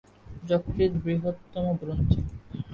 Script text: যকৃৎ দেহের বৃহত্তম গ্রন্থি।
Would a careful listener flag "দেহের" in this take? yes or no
yes